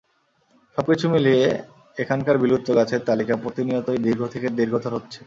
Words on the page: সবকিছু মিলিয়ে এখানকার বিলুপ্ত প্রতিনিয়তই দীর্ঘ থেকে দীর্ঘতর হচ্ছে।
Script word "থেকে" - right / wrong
right